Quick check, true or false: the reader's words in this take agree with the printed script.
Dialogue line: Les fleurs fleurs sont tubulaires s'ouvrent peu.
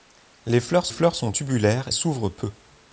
true